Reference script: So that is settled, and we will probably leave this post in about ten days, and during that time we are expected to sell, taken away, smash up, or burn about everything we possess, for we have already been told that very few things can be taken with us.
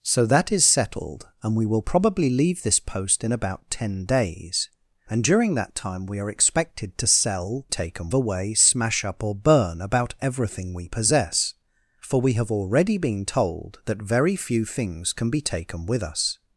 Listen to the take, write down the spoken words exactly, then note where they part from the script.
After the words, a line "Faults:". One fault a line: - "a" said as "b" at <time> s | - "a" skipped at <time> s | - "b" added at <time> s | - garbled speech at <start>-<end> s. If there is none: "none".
So that is settled, and we will probably leave this post in about ten days, and during that time we are expected to sell, taken away, smash up, or burn about everything we possess, for we have already been told that very few things can be taken with us.
Faults:
none